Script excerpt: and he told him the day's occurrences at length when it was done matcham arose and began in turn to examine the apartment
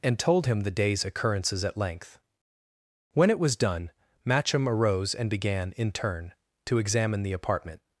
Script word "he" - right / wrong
wrong